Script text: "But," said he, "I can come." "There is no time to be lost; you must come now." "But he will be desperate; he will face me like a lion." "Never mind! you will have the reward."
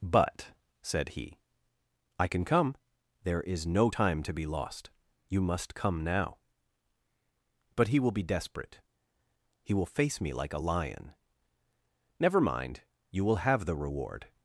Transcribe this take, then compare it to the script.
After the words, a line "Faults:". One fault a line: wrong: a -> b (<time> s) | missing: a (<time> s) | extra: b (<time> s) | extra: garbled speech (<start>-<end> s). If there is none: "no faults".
"But," said he, "I can come." "There is no time to be lost; you must come now." "But he will be desperate; he will face me like a lion." "Never mind! you will have the reward."
Faults:
no faults